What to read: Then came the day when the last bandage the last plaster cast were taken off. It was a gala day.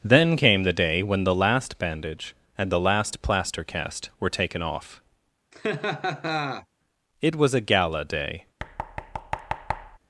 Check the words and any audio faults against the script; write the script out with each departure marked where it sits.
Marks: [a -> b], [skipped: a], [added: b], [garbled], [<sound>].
Then came the day when the last bandage [added: and] the last plaster cast were taken off. [laugh] It was a gala day. [thud]